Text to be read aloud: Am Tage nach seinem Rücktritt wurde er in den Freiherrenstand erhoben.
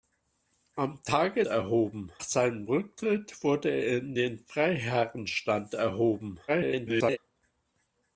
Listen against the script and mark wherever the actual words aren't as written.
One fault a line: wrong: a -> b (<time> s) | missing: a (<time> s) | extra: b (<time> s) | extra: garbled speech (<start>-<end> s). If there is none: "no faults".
wrong: nach -> erhoben (1.5 s)
extra: garbled speech (6.5-7.2 s)